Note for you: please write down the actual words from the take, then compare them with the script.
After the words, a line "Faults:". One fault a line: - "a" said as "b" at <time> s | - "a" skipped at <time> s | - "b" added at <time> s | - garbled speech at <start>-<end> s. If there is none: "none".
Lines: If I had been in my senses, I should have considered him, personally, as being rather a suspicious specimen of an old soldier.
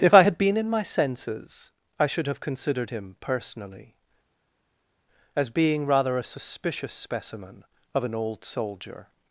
If I had been in my senses, I should have considered him, personally, as being rather a suspicious specimen of an old soldier.
Faults:
none